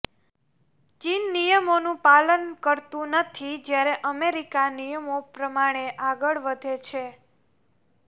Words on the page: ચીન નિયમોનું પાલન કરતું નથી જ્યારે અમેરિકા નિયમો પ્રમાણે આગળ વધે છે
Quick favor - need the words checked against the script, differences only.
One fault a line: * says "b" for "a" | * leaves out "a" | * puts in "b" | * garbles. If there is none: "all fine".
all fine